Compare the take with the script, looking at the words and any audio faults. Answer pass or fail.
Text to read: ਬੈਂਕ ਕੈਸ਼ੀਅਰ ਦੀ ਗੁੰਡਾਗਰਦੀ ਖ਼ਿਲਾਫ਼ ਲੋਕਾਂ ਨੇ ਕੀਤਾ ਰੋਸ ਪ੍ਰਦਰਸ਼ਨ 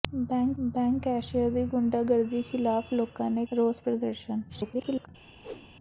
fail